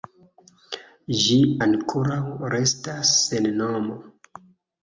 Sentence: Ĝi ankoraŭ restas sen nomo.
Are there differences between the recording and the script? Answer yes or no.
no